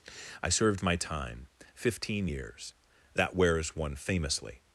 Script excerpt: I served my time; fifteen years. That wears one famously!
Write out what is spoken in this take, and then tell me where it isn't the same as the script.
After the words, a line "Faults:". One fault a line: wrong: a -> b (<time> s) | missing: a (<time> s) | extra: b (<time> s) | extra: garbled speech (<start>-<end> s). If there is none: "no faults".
I served my time; fifteen years. That wears one famously!
Faults:
no faults